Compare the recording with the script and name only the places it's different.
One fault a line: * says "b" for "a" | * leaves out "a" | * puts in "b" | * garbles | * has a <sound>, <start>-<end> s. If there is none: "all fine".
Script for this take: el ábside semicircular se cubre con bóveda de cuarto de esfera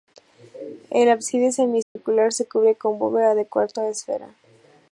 * has a dropout, 1.8-2.0 s